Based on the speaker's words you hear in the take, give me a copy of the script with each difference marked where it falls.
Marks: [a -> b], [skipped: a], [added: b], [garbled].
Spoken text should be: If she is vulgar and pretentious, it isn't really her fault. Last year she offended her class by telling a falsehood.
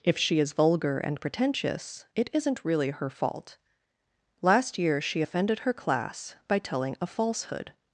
If she is vulgar and pretentious, it isn't really her fault. Last year she offended her class by telling a falsehood.